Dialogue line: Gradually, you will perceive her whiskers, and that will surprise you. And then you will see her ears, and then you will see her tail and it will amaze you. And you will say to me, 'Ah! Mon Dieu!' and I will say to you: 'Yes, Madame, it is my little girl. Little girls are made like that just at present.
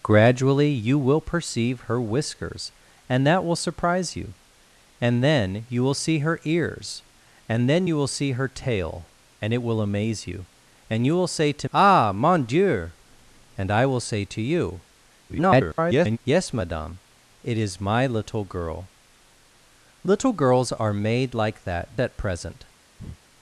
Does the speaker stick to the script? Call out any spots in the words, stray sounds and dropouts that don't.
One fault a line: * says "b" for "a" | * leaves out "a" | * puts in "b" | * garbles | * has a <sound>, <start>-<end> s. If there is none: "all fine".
* leaves out "me"
* garbles
* leaves out "just"
* has a breath, 23.0-23.2 s